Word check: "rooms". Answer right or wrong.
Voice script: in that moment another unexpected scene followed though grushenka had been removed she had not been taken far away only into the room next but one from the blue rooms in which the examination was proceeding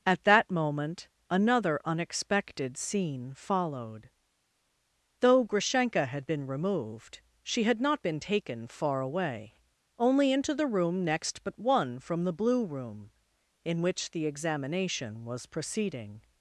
wrong